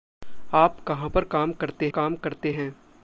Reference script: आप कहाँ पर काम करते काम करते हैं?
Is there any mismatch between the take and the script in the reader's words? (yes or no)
no